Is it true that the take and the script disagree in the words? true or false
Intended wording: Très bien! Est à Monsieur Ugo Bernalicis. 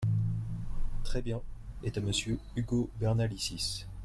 false